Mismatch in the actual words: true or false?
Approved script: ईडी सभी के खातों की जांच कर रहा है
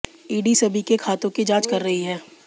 true